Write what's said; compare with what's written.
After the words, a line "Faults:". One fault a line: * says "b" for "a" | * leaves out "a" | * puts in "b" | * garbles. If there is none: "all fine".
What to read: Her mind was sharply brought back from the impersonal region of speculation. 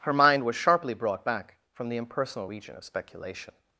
Her mind was sharply brought back from the impersonal region of speculation.
Faults:
all fine